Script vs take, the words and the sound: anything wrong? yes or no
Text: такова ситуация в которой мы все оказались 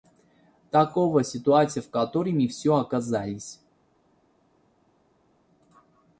no